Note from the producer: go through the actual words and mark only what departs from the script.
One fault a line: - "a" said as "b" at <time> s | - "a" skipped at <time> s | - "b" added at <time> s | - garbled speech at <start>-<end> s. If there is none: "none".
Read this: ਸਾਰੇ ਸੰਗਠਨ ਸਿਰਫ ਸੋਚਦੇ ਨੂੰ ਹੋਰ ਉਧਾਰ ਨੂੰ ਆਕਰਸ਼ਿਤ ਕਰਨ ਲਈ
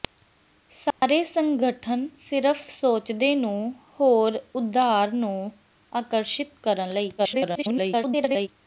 - garbled speech at 7.2-8.5 s